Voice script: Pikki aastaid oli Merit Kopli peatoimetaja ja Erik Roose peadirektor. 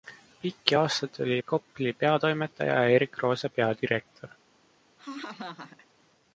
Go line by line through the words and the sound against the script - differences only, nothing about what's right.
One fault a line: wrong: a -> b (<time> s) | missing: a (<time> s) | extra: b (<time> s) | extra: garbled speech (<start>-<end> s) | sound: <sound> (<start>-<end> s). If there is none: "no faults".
missing: Merit (1.4 s)
sound: laugh (5.0-5.9 s)